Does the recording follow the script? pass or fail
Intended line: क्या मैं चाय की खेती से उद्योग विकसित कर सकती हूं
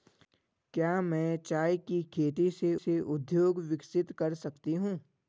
fail